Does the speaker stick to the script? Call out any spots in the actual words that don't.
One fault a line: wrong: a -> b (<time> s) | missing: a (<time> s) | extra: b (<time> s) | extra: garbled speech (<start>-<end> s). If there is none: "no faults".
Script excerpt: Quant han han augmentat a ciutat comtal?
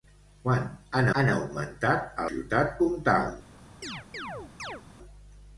no faults